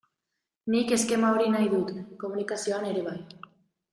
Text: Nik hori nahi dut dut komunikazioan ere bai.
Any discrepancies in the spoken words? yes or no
yes